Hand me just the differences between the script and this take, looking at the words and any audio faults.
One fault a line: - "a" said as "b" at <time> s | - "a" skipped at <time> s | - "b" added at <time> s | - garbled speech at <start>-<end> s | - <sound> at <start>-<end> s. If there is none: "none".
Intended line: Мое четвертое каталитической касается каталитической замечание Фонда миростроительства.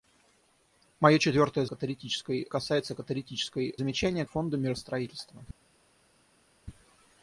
none